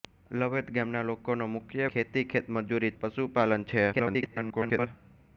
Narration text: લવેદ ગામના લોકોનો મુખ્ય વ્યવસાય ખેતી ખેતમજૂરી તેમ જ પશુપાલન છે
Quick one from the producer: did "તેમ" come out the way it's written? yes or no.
no